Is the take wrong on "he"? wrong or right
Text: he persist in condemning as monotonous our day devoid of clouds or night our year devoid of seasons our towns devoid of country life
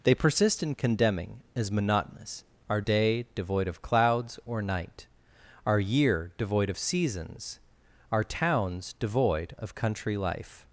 wrong